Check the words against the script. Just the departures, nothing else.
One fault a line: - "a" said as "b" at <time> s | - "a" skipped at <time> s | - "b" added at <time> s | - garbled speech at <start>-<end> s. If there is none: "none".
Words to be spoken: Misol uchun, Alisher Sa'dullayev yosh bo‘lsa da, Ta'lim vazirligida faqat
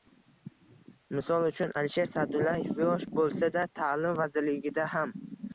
- "faqat" said as "ham" at 5.0 s